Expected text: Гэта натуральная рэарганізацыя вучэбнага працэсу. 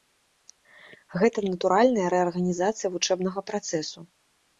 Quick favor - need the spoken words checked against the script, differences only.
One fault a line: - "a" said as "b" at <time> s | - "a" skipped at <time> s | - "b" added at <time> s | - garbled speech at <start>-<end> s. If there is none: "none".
none